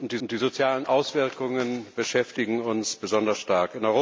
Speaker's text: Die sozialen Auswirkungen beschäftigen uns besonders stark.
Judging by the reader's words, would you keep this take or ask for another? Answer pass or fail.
fail